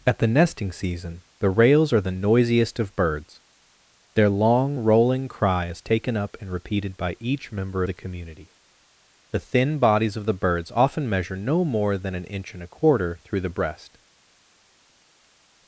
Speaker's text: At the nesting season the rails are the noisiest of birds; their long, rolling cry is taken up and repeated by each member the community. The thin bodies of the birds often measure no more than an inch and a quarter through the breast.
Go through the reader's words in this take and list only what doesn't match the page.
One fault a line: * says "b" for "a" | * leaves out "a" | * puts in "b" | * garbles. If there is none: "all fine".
all fine